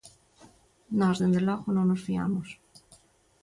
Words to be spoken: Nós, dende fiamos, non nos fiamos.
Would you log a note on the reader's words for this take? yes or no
yes